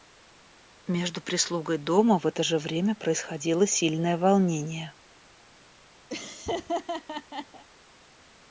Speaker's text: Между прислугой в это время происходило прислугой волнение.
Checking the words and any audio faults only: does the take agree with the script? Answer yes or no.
no